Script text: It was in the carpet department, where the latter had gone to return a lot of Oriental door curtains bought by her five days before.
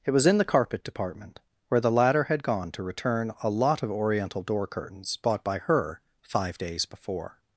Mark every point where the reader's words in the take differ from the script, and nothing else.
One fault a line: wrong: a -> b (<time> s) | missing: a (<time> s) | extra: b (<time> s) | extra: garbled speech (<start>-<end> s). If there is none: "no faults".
no faults